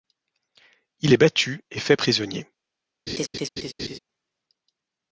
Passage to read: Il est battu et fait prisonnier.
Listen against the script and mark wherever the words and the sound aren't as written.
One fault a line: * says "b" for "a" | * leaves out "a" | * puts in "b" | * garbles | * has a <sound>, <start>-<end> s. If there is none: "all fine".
* has a laugh, 3.1-4.0 s